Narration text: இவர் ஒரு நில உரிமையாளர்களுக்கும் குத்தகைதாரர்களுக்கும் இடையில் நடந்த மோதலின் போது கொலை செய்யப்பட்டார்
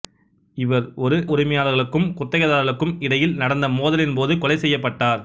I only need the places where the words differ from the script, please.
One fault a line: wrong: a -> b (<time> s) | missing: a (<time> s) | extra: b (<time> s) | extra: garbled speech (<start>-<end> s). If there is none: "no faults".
missing: நில (1.2 s)